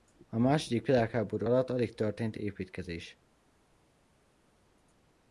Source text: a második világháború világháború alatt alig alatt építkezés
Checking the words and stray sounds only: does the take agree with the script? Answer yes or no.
no